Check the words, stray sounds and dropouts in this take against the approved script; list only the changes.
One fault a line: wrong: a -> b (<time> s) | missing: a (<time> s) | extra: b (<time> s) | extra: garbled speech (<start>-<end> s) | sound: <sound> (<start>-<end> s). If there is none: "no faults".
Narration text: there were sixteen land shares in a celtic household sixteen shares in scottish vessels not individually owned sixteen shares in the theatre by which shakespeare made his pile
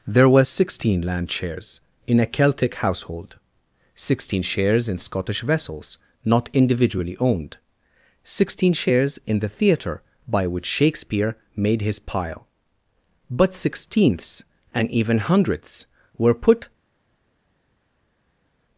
extra: but sixteenths and even hundredths were put (13.3 s)